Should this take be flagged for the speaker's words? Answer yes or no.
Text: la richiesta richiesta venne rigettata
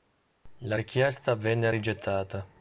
yes